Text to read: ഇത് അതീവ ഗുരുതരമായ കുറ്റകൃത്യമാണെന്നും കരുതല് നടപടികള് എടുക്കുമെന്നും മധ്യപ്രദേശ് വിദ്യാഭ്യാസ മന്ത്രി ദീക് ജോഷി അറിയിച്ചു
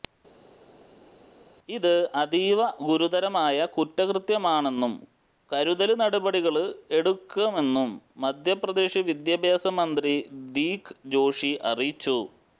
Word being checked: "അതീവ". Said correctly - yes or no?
yes